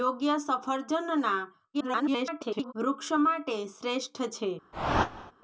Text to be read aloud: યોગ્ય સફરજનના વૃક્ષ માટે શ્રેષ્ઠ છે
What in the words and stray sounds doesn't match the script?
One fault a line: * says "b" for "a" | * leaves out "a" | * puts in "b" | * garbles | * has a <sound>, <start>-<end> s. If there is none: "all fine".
* garbles
* has a whoosh, 4.7-5.3 s